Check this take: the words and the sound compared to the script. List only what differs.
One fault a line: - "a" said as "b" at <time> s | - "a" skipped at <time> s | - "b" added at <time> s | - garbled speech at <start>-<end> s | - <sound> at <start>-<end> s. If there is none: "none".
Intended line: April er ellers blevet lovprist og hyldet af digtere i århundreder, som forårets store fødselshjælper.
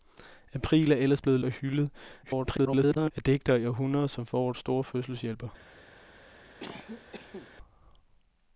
- "lovprist" skipped at 1.4 s
- garbled speech at 2.2-3.1 s
- cough at 6.6-7.5 s